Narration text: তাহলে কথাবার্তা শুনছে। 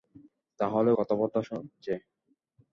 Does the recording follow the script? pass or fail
pass